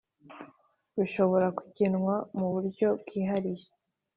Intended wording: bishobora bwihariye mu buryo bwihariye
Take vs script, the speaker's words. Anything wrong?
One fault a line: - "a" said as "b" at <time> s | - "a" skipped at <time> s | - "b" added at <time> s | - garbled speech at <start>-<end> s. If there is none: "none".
- "bwihariye" said as "kugenwa" at 1.6 s